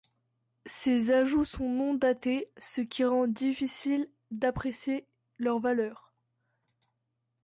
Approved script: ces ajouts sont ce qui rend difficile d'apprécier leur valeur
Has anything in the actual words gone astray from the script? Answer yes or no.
yes